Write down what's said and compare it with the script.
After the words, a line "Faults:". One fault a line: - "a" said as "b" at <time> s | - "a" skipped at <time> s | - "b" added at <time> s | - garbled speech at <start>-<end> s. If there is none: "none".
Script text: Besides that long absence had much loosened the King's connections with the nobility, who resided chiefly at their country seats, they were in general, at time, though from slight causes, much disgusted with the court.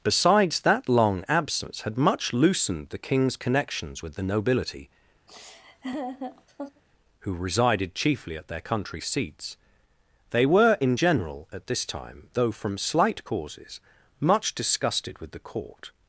Besides that long absence had much loosened the King's connections with the nobility, who resided chiefly at their country seats, they were in general, at this time, though from slight causes, much disgusted with the court.
Faults:
- "this" added at 11.7 s